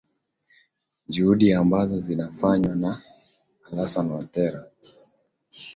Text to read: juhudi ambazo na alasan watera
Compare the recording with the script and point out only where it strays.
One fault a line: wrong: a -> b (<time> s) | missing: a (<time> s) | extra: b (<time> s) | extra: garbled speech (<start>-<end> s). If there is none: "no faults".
extra: zinafanywa (2.0 s)